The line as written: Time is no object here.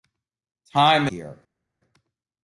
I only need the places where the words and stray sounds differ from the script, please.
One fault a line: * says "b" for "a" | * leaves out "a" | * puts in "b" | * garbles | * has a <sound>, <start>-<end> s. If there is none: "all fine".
* leaves out "is no object"